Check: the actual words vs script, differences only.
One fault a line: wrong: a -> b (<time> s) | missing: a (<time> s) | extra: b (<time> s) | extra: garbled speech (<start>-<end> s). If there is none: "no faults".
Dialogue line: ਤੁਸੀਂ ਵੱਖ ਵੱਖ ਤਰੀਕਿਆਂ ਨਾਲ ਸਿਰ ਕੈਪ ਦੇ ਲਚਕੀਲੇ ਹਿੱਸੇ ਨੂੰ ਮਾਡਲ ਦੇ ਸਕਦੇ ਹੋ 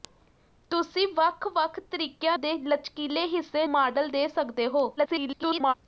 missing: ਨਾਲ ਸਿਰ ਕੈਪ (2.4 s)
missing: ਨੂੰ (3.6 s)
extra: garbled speech (5.0-5.7 s)